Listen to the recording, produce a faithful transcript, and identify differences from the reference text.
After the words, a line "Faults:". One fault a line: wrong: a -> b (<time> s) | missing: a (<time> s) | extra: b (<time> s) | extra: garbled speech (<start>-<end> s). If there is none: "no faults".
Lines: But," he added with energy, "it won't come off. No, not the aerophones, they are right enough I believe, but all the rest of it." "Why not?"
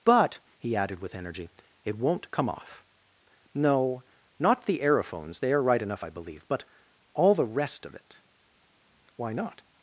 But," he added with energy, "it won't come off. No, not the aerophones, they are right enough I believe, but all the rest of it." "Why not?"
Faults:
no faults